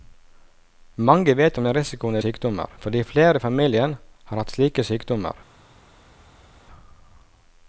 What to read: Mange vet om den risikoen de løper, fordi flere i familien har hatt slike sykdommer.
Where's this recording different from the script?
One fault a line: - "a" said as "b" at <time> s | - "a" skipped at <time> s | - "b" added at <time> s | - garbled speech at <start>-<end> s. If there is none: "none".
- "løper" said as "sykdommer" at 2.2 s